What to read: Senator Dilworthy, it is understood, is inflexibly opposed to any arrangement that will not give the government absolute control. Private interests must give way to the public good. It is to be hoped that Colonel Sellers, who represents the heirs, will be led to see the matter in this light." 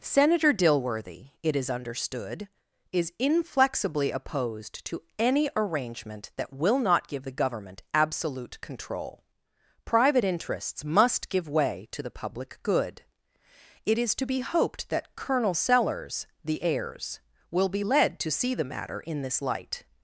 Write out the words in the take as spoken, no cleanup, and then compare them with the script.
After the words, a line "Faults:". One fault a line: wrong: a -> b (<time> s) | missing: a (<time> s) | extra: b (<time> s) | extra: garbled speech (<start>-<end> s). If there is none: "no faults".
Senator Dilworthy, it is understood, is inflexibly opposed to any arrangement that will not give the government absolute control. Private interests must give way to the public good. It is to be hoped that Colonel Sellers, the heirs, will be led to see the matter in this light."
Faults:
missing: who represents (16.3 s)